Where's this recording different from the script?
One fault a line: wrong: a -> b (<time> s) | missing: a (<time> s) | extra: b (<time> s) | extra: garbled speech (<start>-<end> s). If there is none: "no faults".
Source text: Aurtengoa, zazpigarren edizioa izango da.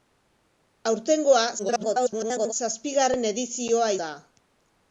extra: garbled speech (1.6-2.5 s)
missing: izango (3.9 s)